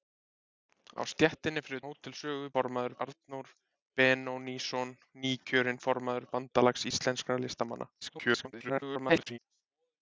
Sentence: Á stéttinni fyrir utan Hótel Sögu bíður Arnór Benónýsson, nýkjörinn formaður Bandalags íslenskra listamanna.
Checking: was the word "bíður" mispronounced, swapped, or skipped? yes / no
yes